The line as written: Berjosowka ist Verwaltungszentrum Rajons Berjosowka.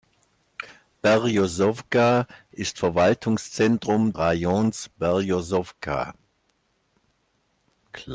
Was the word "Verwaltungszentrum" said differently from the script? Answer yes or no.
no